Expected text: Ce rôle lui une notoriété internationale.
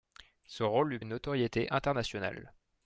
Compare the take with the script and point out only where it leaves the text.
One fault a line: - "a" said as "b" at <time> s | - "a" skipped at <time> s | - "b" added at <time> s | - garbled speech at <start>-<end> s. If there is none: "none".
none